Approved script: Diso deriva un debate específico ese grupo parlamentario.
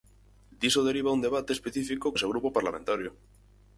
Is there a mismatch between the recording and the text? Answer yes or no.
no